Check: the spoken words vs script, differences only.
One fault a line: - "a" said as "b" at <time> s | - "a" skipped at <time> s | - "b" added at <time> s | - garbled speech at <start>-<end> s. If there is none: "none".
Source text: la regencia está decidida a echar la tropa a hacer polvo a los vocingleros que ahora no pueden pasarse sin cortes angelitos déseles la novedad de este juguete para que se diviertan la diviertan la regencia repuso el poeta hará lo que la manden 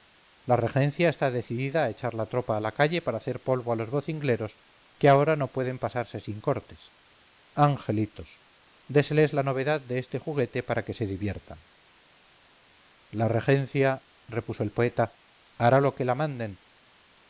- "la calle para" added at 2.6 s
- "diviertan la" skipped at 13.3 s